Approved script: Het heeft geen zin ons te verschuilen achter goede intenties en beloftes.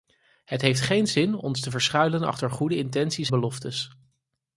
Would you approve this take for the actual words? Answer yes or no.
no